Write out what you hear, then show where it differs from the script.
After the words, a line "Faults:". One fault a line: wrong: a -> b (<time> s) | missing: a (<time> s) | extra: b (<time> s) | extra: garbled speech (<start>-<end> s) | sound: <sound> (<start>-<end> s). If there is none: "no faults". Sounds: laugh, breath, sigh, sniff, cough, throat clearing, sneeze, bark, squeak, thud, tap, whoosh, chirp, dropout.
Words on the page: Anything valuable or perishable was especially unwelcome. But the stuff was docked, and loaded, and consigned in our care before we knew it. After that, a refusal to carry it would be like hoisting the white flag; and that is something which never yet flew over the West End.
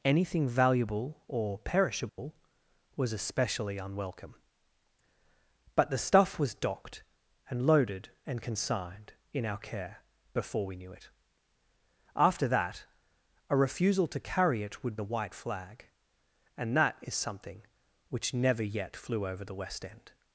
Anything valuable or perishable was especially unwelcome. But the stuff was docked, and loaded, and consigned in our care before we knew it. After that, a refusal to carry it would the white flag; and that is something which never yet flew over the West End.
Faults:
sound: dropout (2.1-2.2 s)
missing: be like hoisting (15.0 s)